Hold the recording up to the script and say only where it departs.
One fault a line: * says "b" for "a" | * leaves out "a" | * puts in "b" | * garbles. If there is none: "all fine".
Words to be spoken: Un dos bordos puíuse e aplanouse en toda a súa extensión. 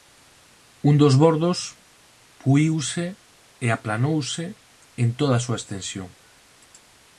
all fine